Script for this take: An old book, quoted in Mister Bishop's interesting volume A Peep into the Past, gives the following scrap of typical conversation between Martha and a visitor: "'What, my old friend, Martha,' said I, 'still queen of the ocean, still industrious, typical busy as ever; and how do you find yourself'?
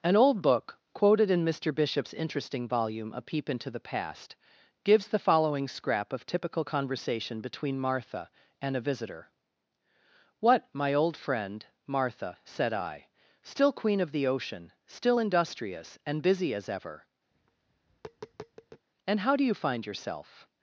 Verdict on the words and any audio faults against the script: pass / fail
fail